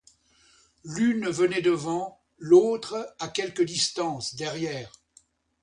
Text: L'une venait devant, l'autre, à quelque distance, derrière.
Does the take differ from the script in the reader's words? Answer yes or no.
no